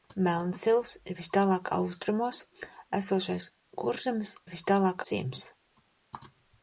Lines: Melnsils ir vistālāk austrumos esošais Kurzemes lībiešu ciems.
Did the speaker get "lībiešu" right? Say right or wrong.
wrong